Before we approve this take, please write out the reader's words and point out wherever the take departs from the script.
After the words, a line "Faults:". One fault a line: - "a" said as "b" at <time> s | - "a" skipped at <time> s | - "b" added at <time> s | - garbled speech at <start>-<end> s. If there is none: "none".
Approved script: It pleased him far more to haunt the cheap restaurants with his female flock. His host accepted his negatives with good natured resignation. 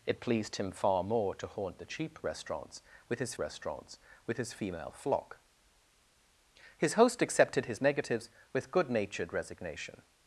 It pleased him far more to haunt the cheap restaurants with his restaurants with his female flock. His host accepted his negatives with good natured resignation.
Faults:
- "restaurants with his" added at 3.4 s